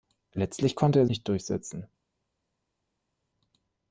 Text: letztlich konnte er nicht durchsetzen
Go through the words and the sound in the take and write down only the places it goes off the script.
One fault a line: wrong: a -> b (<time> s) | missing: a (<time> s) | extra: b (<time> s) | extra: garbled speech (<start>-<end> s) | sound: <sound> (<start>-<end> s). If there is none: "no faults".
no faults